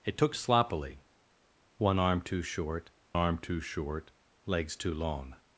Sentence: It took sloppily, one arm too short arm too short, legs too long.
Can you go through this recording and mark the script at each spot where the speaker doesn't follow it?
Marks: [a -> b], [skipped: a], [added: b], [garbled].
It took sloppily, one arm too short arm too short, legs too long.